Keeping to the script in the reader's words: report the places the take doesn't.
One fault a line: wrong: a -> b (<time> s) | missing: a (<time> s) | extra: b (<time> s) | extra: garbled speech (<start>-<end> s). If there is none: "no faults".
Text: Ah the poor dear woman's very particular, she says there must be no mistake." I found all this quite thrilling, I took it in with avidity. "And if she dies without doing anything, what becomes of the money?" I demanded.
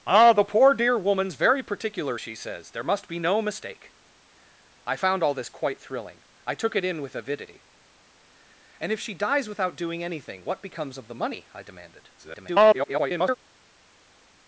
extra: garbled speech (12.2-13.4 s)